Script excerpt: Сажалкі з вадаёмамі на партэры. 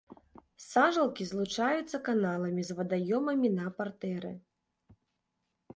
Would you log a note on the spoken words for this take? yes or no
yes